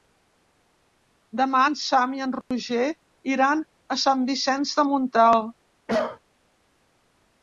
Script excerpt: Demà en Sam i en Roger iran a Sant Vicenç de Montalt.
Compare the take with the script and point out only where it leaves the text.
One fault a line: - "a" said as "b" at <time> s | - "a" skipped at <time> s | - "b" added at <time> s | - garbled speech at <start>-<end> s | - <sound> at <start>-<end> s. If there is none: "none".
- dropout at 2.4-2.5 s
- cough at 5.9-6.2 s